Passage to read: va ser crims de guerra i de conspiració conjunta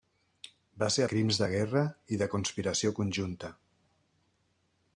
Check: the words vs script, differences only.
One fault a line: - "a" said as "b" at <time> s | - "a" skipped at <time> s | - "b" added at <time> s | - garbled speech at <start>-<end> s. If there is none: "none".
none